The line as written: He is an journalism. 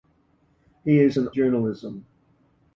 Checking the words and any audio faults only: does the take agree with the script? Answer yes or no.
yes